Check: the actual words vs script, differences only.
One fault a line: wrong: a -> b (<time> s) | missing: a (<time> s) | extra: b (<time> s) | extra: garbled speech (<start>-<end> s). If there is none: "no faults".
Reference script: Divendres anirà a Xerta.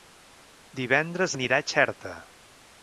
no faults